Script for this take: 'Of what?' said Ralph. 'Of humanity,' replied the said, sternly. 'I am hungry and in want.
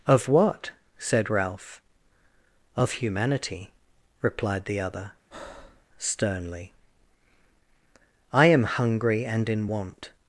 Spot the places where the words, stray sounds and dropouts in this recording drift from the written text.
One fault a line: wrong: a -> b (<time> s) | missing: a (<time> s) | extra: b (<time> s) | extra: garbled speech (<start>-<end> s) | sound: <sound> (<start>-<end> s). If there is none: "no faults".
wrong: said -> other (4.8 s)
sound: breath (5.3-5.9 s)